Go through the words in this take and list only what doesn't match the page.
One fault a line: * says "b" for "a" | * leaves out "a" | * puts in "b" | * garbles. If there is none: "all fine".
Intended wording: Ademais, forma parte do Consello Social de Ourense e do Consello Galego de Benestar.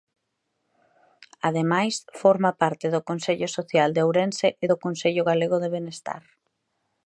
all fine